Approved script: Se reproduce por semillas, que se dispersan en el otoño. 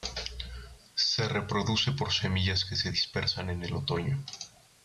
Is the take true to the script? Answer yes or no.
yes